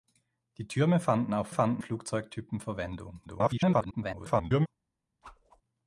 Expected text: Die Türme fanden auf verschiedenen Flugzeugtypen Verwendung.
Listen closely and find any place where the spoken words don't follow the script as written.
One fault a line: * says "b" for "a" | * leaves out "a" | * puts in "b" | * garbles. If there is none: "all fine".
* says "fanden" for "verschiedenen"
* garbles